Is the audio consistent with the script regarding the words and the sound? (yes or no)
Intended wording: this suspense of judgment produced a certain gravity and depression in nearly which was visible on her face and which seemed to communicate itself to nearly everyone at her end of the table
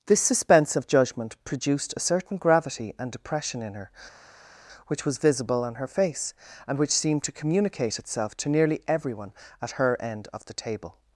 no